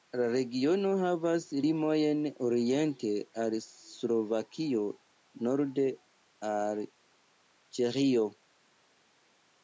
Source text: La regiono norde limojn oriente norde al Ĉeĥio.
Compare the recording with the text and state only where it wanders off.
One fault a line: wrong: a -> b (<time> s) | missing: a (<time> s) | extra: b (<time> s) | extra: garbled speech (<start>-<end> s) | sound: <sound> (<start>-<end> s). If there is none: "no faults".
wrong: norde -> havas (1.0 s)
extra: al Slovakio (3.5 s)